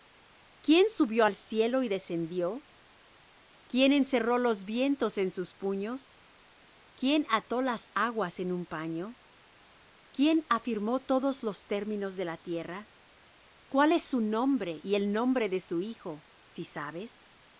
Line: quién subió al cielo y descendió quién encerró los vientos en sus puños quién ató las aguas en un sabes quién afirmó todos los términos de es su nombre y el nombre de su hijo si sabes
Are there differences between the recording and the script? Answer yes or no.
yes